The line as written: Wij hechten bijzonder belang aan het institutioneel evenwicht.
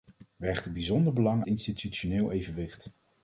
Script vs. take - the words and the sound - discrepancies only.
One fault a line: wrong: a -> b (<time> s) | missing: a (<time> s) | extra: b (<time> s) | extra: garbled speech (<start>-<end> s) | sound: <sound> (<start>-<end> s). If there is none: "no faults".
missing: aan het (1.4 s)